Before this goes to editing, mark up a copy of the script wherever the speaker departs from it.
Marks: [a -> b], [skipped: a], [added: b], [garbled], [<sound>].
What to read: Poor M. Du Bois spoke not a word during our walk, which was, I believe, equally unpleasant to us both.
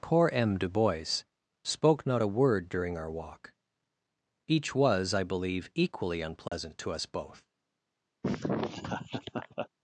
Poor M. Du Bois spoke not a word during our walk, [which -> each] was, I believe, equally unpleasant [dropout] to us both. [laugh]